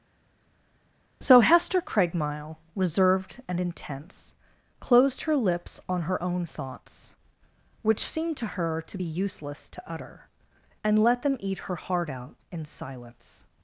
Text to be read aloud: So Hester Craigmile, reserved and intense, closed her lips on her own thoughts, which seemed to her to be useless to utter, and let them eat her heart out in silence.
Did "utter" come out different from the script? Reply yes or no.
no